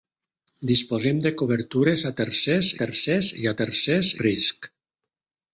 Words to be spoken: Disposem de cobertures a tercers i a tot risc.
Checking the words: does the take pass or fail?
fail